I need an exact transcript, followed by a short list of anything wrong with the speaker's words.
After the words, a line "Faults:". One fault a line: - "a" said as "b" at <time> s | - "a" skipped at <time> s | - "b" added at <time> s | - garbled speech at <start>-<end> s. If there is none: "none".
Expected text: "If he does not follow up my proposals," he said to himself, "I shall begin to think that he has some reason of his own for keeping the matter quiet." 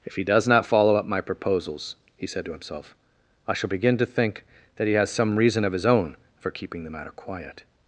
"If he does not follow up my proposals," he said to himself, "I shall begin to think that he has some reason of his own for keeping the matter quiet."
Faults:
none